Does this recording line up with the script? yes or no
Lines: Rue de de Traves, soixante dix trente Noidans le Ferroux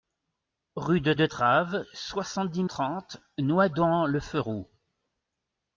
yes